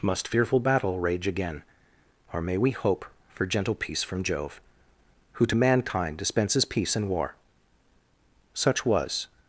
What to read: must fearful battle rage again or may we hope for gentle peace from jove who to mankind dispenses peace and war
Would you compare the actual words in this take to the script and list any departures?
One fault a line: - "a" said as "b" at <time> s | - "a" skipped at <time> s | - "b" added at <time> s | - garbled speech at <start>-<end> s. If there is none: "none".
- "such was" added at 8.5 s